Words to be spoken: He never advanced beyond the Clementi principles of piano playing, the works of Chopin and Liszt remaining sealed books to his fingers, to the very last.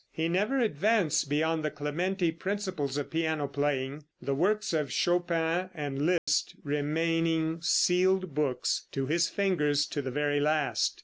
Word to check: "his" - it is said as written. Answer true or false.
true